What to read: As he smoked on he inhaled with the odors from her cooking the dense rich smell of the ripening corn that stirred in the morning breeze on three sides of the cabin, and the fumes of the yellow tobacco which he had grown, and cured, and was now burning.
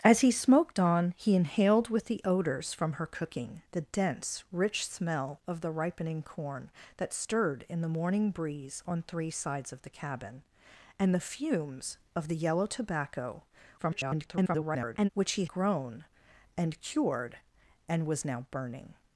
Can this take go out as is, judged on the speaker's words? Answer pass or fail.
fail